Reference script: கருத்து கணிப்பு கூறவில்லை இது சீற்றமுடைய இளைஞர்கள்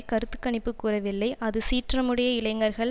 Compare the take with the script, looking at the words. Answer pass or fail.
fail